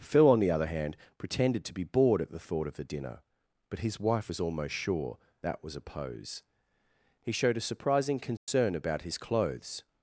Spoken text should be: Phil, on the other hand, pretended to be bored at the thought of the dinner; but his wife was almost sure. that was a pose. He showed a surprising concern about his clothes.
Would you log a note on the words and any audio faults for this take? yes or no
yes